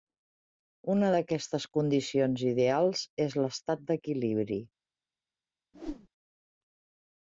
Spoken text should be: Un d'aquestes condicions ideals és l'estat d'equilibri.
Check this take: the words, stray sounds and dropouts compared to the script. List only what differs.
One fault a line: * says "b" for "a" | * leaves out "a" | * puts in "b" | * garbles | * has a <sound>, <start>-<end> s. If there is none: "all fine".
* says "Una" for "Un"
* has a whoosh, 5.7-6.1 s